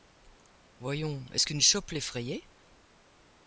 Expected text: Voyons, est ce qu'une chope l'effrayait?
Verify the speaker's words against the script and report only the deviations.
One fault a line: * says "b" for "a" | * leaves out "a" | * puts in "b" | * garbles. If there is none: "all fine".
all fine